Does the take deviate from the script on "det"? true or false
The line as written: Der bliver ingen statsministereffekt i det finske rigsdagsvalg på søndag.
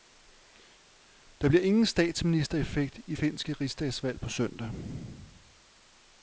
true